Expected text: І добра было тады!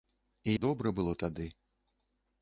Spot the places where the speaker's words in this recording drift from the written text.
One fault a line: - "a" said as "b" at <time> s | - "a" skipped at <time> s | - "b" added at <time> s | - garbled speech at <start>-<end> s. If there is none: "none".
none